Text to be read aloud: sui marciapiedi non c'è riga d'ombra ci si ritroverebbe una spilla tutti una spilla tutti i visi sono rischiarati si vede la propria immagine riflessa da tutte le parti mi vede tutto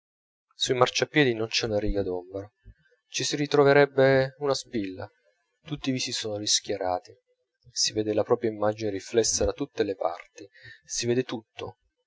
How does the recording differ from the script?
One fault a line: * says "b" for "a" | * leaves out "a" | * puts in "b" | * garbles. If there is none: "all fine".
* puts in "una"
* leaves out "una spilla tutti"
* says "si" for "mi"